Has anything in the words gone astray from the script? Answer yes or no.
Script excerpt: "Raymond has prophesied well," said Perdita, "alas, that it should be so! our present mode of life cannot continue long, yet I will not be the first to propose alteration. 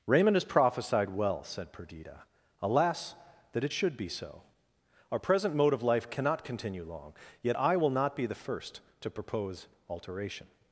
no